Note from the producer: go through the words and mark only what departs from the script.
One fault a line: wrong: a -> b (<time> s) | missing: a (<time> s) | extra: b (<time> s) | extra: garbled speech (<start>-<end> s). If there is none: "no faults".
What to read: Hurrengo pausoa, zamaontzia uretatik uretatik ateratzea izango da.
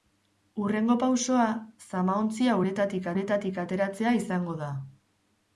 no faults